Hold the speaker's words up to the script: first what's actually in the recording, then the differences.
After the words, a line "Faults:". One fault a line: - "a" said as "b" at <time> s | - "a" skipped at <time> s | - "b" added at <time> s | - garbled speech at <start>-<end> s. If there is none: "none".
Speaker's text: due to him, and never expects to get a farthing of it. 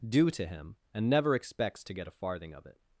due to him, and never expects to get a farthing of it.
Faults:
none